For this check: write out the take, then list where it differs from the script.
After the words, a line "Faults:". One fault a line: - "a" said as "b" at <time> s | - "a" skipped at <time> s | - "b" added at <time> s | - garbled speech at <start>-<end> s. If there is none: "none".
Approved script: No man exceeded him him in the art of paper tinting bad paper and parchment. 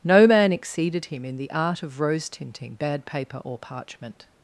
No man exceeded him in the art of rose tinting bad paper or parchment.
Faults:
- "him" skipped at 1.2 s
- "paper" said as "rose" at 2.0 s
- "and" said as "or" at 3.4 s